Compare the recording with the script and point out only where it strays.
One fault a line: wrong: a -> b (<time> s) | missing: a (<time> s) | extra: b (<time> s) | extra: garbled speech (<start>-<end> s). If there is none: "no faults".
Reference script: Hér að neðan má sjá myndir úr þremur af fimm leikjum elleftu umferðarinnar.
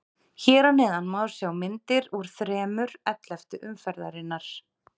missing: af fimm leikjum (2.9 s)